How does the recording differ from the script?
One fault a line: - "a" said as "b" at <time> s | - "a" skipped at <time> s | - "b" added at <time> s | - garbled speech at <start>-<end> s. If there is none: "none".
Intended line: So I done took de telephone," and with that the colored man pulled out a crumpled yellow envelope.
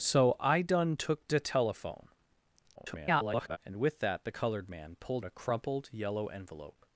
- garbled speech at 2.8-3.6 s
- "out" skipped at 5.3 s